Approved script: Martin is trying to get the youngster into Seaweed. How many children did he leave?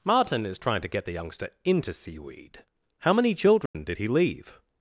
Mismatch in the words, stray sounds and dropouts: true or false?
true